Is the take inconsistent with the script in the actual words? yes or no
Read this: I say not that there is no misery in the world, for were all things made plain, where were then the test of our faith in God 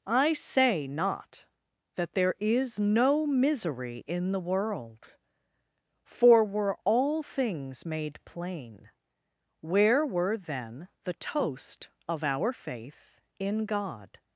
yes